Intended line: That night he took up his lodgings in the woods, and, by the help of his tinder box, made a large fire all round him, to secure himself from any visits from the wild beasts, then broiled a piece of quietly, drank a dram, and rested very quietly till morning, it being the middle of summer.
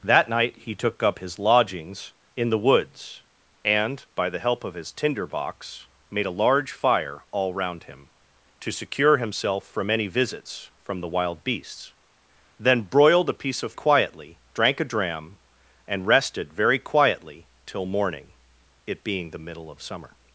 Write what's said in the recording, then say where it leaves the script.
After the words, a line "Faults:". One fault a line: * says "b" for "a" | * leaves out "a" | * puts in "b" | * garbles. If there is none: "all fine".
That night he took up his lodgings in the woods, and, by the help of his tinder box, made a large fire all round him, to secure himself from any visits from the wild beasts, then broiled a piece of quietly, drank a dram, and rested very quietly till morning, it being the middle of summer.
Faults:
all fine